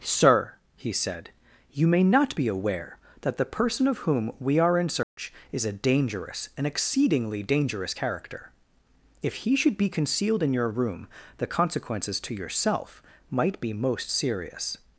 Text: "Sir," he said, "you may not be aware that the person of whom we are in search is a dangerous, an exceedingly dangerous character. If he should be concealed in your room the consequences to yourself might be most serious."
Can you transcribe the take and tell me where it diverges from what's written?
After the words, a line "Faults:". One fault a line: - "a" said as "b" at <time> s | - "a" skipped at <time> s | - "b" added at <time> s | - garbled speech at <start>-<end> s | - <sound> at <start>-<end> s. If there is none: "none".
"Sir," he said, "you may not be aware that the person of whom we are in search is a dangerous, an exceedingly dangerous character. If he should be concealed in your room the consequences to yourself might be most serious."
Faults:
- dropout at 5.0-5.2 s